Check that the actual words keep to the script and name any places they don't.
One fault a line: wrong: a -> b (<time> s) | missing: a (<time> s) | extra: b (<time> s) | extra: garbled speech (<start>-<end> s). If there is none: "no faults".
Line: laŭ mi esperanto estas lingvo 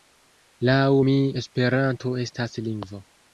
no faults